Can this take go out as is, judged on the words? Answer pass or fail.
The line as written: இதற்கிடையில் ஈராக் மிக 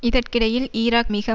pass